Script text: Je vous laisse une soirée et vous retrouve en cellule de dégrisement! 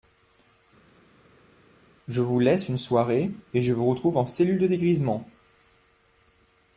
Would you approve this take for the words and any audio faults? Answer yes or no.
no